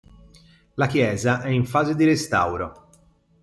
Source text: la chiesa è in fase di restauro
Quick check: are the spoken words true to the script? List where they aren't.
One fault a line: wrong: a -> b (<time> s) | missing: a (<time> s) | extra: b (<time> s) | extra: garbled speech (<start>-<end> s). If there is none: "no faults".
no faults